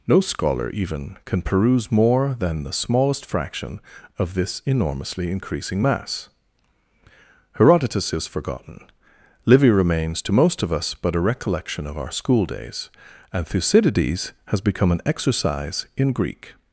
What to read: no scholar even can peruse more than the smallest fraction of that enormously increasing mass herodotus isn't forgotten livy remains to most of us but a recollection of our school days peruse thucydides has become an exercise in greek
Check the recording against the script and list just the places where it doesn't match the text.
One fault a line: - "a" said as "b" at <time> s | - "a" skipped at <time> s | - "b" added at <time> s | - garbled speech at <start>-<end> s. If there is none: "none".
- "that" said as "this" at 4.3 s
- "isn't" said as "is" at 8.1 s
- "peruse" said as "and" at 13.3 s